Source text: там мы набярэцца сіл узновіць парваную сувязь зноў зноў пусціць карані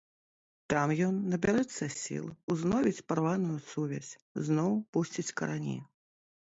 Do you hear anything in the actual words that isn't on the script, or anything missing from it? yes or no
yes